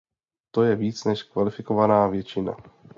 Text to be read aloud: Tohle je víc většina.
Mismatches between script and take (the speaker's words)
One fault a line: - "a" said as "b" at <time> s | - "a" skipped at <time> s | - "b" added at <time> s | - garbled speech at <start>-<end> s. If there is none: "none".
- "Tohle" said as "To" at 0.5 s
- "než kvalifikovaná" added at 1.0 s